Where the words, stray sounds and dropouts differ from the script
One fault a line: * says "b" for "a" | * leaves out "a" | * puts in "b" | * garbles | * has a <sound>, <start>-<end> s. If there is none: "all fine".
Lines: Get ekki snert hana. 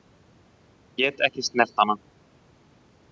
all fine